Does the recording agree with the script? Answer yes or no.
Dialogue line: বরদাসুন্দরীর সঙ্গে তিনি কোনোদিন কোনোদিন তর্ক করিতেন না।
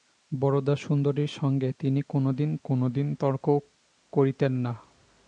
yes